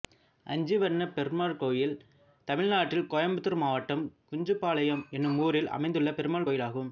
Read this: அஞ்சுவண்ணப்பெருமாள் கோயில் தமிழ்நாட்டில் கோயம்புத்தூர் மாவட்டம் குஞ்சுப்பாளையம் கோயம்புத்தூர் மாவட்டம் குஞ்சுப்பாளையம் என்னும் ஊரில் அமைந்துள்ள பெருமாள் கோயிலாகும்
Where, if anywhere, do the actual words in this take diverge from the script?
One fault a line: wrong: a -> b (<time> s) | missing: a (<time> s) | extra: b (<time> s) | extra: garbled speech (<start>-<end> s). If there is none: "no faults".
missing: கோயம்புத்தூர் மாவட்டம் குஞ்சுப்பாளையம் (5.0 s)